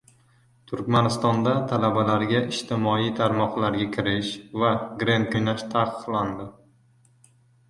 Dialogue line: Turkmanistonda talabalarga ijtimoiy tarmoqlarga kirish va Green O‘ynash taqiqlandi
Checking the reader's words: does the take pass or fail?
pass